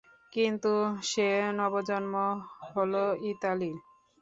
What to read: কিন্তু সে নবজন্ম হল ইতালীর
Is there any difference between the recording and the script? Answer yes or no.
no